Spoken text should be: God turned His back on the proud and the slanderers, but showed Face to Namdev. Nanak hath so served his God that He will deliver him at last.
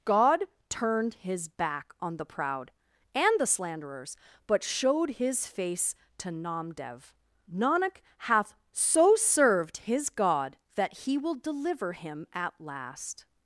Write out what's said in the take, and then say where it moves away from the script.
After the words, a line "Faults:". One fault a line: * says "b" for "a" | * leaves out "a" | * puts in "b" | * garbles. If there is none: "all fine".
God turned His back on the proud and the slanderers, but showed His face to Namdev. Nanak hath so served his God that He will deliver him at last.
Faults:
* puts in "His"